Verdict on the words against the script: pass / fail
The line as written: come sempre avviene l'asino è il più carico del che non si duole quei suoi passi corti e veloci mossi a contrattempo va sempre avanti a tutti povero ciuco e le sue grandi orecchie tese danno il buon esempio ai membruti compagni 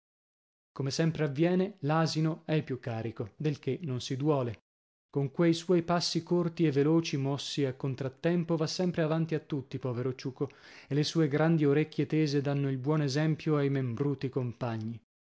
fail